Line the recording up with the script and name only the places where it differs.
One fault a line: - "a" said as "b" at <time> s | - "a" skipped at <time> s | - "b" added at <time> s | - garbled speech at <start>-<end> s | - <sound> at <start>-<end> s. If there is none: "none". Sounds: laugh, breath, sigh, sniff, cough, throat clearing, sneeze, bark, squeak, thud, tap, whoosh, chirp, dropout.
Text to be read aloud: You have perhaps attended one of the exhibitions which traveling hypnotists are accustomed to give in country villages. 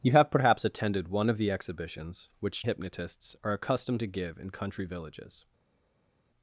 - "traveling" skipped at 2.6 s